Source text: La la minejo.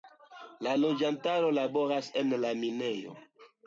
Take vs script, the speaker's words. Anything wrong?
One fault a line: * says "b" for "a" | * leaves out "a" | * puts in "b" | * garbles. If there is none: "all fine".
* puts in "loĝantaro laboras en"